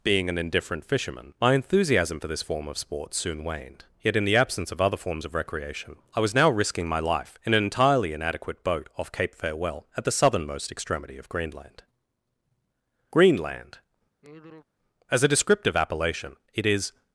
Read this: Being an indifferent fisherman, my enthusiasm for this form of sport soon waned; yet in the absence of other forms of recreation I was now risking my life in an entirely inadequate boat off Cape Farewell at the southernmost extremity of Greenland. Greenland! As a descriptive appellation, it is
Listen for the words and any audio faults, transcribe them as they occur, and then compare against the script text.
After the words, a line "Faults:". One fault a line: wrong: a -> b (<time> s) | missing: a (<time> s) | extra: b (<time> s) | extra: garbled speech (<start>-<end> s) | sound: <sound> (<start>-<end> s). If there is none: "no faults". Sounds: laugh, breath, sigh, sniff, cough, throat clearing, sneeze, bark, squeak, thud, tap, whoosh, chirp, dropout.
Being an indifferent fisherman, my enthusiasm for this form of sport soon waned; yet in the absence of other forms of recreation I was now risking my life in an entirely inadequate boat off Cape Farewell at the southernmost extremity of Greenland. Greenland! As a descriptive appellation, it is
Faults:
sound: sigh (14.2-14.7 s)